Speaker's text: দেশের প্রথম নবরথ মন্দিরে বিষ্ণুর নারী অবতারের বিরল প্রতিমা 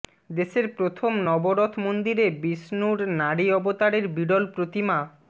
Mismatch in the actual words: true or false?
false